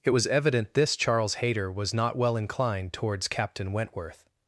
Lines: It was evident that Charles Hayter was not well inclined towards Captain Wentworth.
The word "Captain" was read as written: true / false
true